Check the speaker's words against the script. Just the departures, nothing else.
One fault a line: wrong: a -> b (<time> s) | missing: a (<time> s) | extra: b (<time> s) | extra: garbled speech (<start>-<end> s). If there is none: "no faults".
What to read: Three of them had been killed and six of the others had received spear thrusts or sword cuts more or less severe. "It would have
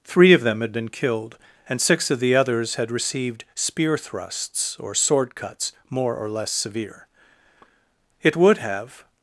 no faults